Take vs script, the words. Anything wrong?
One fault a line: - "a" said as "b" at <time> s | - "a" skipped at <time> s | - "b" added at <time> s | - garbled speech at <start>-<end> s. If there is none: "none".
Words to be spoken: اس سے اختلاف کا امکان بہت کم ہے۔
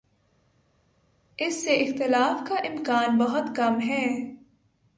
none